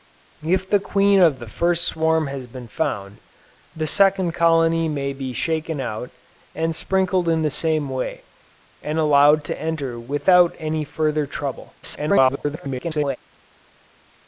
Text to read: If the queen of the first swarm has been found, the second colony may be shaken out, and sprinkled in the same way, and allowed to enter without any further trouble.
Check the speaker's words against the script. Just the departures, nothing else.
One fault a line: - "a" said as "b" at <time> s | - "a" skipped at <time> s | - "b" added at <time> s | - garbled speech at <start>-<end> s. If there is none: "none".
- garbled speech at 11.8-13.2 s